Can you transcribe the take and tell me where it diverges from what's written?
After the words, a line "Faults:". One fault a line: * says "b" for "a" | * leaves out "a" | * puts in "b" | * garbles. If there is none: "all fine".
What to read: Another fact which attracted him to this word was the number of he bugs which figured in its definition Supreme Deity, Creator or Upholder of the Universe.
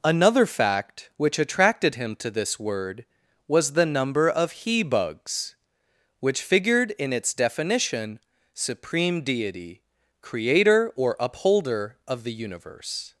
Another fact which attracted him to this word was the number of he bugs which figured in its definition Supreme Deity, Creator or Upholder of the Universe.
Faults:
all fine